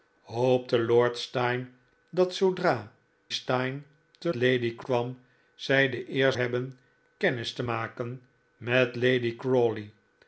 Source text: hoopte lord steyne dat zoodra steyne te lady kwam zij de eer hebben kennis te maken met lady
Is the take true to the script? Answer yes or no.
yes